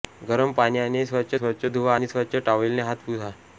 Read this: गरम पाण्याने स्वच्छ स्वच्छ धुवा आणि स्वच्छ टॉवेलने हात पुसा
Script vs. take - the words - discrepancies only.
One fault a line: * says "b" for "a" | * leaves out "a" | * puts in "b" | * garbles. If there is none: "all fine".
all fine